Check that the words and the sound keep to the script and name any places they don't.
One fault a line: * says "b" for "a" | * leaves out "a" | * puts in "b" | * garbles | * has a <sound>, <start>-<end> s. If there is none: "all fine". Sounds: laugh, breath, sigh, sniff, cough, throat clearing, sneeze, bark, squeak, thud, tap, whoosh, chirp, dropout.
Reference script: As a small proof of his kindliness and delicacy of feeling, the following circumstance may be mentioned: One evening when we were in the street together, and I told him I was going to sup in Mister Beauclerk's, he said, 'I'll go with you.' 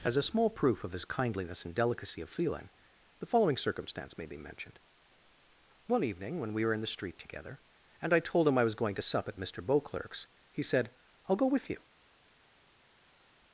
* says "at" for "in"